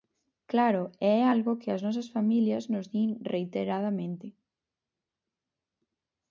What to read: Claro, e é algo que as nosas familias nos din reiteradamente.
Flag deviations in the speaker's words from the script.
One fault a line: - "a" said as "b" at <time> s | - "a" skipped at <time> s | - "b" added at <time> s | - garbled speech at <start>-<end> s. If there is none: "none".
none